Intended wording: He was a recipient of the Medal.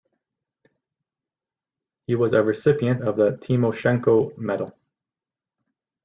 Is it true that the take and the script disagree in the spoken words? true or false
true